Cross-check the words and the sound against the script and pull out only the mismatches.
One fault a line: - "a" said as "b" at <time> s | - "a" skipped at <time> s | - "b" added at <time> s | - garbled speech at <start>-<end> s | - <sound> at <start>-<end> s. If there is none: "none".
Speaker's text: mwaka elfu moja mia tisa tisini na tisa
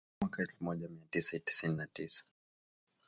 none